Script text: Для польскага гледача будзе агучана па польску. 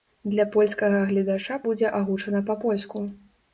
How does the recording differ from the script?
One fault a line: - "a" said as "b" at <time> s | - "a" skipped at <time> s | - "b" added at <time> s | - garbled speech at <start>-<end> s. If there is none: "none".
none